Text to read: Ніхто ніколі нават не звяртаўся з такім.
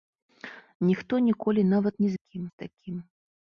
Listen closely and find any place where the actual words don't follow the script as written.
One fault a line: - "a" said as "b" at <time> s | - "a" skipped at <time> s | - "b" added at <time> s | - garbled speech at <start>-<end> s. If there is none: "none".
- "звяртаўся" said as "такім" at 2.1 s